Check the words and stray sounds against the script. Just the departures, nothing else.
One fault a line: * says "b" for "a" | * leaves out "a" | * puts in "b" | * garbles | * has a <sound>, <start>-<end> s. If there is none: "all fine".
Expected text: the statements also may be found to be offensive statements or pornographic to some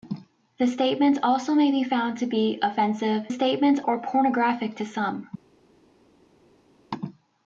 all fine